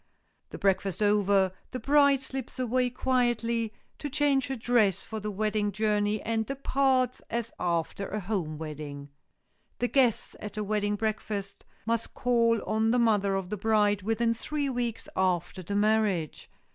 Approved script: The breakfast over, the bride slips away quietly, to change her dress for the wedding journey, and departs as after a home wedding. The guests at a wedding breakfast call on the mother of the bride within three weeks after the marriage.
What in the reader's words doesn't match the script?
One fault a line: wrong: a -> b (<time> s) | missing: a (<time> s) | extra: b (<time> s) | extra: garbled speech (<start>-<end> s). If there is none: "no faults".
extra: must (11.8 s)